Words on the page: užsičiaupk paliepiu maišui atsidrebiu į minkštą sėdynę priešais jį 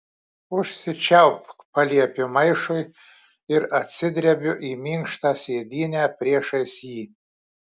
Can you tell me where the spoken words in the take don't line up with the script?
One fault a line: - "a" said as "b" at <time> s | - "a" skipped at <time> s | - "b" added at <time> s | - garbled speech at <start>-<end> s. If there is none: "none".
- "ir" added at 3.6 s